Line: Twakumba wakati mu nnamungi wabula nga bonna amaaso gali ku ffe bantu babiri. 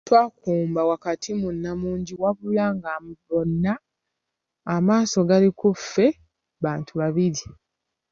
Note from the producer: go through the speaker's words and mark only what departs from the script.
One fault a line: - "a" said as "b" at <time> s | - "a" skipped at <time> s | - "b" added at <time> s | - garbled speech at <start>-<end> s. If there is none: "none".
none